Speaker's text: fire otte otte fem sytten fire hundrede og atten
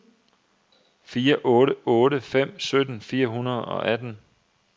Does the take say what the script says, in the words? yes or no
yes